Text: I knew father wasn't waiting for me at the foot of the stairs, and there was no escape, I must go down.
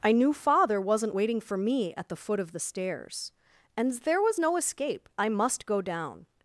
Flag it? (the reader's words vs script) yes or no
no